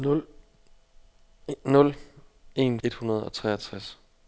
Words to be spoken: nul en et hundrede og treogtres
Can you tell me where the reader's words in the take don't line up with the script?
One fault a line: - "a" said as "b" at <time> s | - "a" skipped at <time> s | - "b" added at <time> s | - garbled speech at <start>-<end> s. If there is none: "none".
none